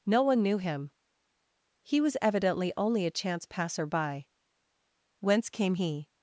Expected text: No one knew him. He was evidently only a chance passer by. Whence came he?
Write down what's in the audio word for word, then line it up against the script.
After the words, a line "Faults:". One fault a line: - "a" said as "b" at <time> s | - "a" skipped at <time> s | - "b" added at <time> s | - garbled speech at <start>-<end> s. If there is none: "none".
No one knew him. He was evidently only a chance passer by. Whence came he?
Faults:
none